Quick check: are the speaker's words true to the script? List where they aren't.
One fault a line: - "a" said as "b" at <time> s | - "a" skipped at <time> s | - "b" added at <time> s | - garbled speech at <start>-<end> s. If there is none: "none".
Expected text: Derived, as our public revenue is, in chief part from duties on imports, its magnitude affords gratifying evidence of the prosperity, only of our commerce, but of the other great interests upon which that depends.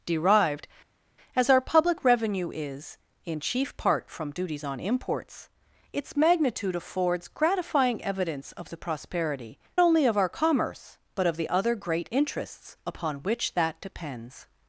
none